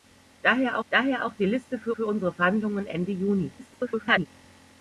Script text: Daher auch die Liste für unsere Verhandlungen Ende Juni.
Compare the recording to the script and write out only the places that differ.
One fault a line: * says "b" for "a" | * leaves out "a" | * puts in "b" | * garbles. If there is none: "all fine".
* puts in "daher"
* puts in "für"
* garbles